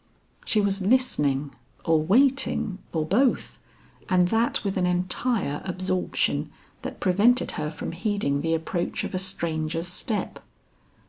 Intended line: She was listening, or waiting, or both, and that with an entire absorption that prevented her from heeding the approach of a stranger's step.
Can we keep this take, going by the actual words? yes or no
yes